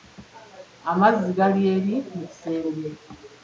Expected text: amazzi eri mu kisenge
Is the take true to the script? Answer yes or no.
no